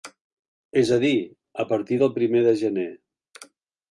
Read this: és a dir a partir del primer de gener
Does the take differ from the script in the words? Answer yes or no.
no